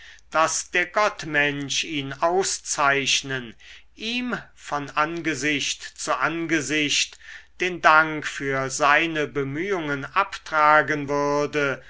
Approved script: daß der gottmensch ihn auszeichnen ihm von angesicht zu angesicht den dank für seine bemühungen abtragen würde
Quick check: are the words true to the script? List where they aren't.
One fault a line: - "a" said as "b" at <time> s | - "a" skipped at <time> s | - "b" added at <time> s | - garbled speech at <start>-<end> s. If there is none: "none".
none